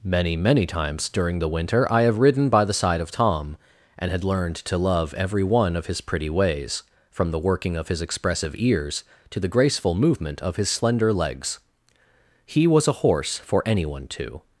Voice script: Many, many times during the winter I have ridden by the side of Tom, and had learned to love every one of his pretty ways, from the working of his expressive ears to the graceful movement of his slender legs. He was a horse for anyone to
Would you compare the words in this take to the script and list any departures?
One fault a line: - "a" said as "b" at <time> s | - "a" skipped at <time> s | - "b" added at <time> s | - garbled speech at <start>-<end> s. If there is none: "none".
none